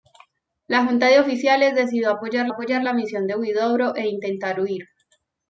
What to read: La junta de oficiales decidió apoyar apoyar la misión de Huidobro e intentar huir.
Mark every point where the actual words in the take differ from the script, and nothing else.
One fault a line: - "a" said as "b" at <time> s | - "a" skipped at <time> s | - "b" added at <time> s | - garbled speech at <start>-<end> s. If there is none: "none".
none